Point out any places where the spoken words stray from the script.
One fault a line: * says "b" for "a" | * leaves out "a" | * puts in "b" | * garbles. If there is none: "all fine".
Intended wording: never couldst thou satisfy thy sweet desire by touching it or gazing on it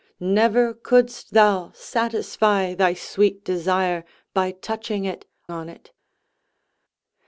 * leaves out "or gazing"